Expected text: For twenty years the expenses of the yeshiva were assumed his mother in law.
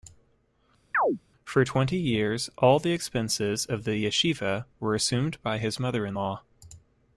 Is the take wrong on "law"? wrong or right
right